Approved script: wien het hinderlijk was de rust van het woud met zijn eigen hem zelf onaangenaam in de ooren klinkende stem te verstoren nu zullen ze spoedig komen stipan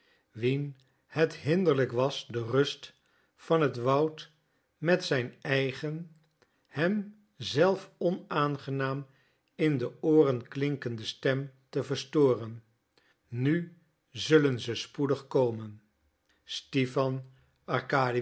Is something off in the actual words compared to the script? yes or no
no